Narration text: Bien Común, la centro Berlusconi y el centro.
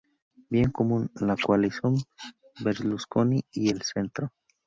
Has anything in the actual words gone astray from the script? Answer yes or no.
yes